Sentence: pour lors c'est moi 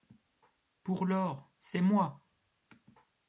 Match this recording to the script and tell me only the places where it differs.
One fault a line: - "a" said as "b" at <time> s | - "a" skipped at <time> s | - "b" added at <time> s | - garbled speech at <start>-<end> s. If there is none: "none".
none